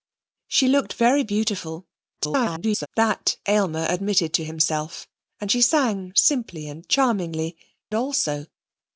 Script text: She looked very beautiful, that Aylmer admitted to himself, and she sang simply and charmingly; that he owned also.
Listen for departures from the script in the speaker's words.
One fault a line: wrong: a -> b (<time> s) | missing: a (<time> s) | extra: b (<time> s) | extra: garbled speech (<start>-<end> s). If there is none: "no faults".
extra: garbled speech (2.2-2.9 s)
missing: that he owned (7.6 s)